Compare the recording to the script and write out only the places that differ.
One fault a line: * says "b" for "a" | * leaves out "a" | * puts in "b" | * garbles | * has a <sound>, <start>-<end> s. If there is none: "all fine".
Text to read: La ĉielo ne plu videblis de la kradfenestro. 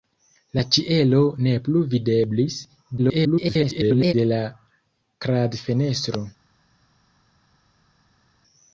* garbles